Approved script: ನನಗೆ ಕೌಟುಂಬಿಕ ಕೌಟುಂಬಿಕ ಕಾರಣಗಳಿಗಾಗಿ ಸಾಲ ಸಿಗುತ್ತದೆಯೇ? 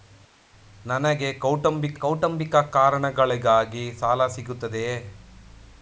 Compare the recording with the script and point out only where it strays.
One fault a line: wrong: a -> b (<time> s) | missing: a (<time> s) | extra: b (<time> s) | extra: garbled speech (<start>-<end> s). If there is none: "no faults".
no faults